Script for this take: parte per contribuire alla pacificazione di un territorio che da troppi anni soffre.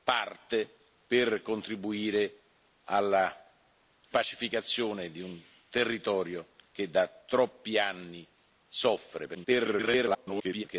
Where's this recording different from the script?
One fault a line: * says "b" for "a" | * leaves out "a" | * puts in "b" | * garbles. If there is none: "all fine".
* garbles